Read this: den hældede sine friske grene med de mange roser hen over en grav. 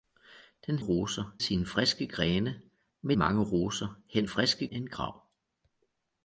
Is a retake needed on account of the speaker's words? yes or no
yes